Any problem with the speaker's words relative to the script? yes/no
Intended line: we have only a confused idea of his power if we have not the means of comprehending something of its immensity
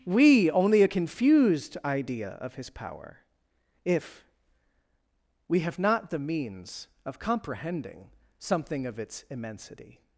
yes